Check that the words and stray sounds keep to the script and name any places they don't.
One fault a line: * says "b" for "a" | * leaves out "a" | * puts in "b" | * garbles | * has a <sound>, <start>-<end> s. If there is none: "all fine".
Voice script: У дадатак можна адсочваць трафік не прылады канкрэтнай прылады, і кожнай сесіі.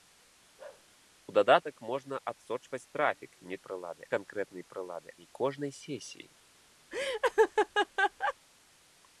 * has a bark, 0.6-0.9 s
* has a laugh, 6.9-8.3 s